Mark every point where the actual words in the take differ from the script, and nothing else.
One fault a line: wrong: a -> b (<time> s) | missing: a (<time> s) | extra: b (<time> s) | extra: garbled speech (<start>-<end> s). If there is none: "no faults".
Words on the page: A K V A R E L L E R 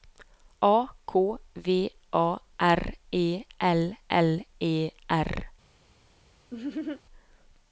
no faults